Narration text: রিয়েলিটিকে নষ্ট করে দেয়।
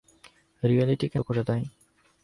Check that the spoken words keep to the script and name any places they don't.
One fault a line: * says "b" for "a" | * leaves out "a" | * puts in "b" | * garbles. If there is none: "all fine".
* leaves out "নষ্ট"